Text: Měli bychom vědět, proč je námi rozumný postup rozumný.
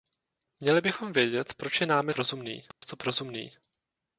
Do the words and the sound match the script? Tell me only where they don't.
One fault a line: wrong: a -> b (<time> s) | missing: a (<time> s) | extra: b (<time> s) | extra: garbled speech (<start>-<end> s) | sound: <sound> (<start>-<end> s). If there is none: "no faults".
sound: dropout (2.7-2.8 s)